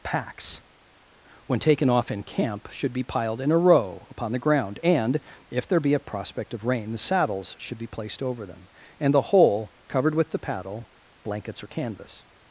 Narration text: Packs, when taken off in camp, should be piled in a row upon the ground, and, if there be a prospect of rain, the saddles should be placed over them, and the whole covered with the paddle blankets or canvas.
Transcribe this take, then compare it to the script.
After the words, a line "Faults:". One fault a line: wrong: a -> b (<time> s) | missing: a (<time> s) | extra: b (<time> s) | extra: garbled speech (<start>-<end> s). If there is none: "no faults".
Packs, when taken off in camp, should be piled in a row upon the ground, and, if there be a prospect of rain, the saddles should be placed over them, and the whole covered with the paddle blankets or canvas.
Faults:
no faults